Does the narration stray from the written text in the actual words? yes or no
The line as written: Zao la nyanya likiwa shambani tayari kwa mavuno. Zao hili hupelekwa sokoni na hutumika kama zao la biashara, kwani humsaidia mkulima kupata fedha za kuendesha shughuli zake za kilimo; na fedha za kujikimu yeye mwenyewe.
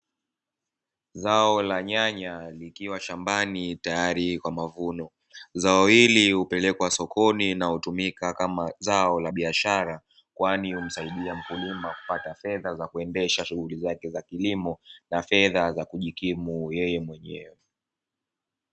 no